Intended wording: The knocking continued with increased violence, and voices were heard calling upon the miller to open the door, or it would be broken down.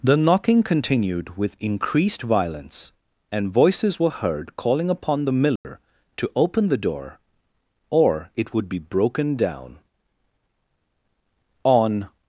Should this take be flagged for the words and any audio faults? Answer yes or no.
yes